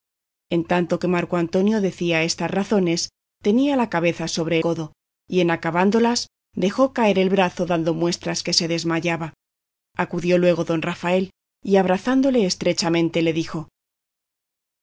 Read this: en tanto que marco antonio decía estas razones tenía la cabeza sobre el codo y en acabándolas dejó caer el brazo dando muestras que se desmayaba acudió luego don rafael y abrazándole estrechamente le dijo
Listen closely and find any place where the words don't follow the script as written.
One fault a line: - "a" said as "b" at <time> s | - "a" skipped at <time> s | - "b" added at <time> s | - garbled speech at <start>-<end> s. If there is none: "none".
- "el" skipped at 4.6 s